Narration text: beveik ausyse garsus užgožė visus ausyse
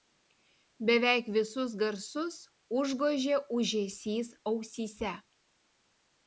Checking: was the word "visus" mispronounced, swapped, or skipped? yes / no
yes